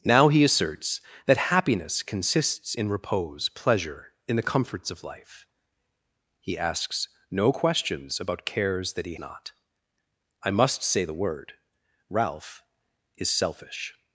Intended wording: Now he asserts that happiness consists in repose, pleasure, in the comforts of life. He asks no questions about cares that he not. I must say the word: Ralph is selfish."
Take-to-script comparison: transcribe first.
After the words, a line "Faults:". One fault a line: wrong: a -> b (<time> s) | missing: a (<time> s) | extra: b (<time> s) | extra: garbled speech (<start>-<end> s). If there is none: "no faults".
Now he asserts that happiness consists in repose, pleasure, in the comforts of life. He asks no questions about cares that he not. I must say the word: Ralph is selfish."
Faults:
no faults